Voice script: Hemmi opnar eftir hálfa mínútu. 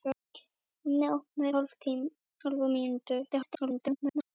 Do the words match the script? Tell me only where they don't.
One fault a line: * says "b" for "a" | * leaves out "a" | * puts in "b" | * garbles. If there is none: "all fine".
* leaves out "eftir"
* garbles